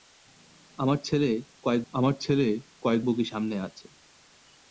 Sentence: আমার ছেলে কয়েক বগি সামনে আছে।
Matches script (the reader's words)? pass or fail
fail